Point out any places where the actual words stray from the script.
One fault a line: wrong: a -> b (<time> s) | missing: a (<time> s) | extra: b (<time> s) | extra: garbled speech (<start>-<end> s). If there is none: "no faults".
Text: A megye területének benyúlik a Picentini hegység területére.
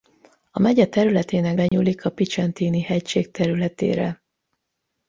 no faults